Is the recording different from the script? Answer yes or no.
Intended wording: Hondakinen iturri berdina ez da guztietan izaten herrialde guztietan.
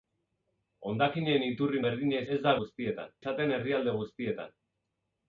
no